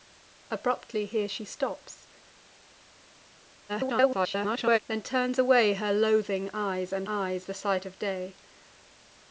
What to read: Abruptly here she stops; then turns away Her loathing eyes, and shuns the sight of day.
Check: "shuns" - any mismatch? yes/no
yes